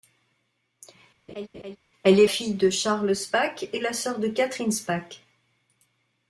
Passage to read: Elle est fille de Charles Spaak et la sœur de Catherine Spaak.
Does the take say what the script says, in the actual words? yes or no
yes